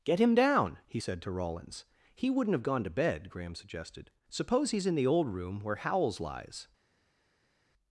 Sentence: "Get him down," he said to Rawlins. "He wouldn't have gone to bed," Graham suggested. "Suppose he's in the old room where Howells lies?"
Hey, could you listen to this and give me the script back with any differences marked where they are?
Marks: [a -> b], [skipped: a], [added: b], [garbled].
"Get him down," he said to Rawlins. "He wouldn't have gone to bed," Graham suggested. "Suppose he's in the old room where Howells lies?"